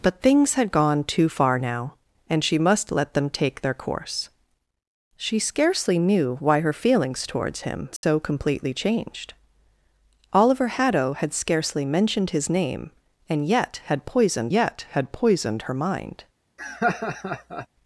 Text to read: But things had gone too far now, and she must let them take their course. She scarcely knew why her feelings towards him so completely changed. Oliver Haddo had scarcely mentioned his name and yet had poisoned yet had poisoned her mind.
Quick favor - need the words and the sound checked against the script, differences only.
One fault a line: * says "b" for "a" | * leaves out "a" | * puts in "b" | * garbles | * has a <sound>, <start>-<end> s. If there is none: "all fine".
* has a dropout, 8.0-8.0 s
* has a laugh, 16.6-17.7 s